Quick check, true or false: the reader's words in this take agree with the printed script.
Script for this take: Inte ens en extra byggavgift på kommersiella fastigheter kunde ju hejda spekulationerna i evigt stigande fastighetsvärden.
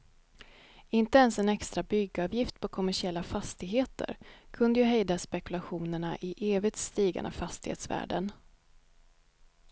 true